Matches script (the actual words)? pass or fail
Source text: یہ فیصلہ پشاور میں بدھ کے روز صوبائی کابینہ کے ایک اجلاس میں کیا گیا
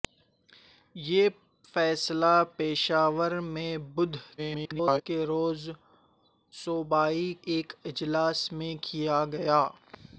fail